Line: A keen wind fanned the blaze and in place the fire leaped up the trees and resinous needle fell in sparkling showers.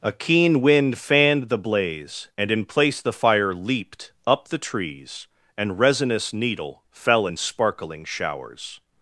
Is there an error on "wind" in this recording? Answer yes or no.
no